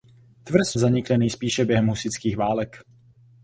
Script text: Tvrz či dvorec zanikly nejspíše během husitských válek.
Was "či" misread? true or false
true